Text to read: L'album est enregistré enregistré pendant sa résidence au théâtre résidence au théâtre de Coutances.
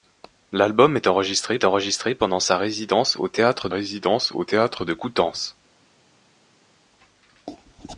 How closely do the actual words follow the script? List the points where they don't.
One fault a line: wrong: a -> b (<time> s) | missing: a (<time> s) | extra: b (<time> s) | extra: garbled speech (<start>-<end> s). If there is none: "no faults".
no faults